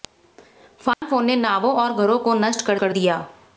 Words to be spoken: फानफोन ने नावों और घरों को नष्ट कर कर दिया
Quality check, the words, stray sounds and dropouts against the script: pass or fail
fail